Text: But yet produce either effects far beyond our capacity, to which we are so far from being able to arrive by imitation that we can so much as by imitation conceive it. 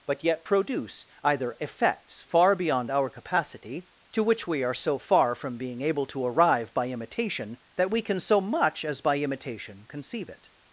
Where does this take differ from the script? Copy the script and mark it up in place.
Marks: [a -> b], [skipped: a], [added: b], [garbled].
But yet produce either effects far beyond our capacity, to which we are so far from being able to arrive by imitation that we can so much as by imitation conceive it.